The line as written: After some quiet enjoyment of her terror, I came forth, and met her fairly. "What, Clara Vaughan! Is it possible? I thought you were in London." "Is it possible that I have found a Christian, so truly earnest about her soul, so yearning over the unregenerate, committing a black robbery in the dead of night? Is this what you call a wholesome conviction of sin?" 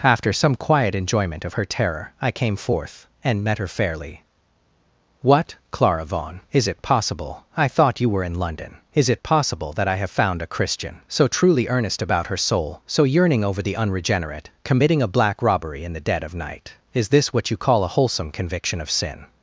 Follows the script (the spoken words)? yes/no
yes